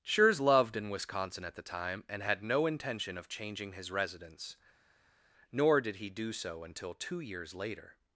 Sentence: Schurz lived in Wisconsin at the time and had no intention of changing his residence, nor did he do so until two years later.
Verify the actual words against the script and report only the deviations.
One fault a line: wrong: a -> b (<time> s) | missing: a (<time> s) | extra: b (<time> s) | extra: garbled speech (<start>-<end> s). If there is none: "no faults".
wrong: lived -> loved (0.4 s)